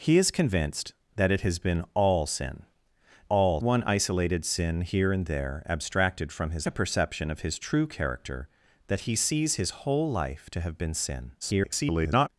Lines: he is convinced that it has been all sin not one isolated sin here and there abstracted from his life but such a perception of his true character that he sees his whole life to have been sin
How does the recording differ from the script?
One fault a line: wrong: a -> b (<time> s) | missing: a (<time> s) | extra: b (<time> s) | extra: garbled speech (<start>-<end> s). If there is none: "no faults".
wrong: not -> all (3.3 s)
missing: life but such (6.7 s)
extra: garbled speech (11.4-12.3 s)